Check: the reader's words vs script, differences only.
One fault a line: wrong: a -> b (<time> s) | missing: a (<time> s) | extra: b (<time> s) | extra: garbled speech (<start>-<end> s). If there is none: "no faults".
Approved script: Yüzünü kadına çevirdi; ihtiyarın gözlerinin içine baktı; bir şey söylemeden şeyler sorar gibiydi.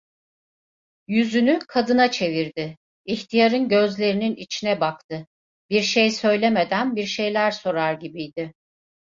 extra: bir (7.0 s)